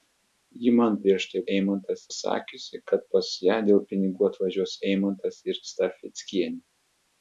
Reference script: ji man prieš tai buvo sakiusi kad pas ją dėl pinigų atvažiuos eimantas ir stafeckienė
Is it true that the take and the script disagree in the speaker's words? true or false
true